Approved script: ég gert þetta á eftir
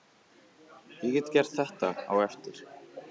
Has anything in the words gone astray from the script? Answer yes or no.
yes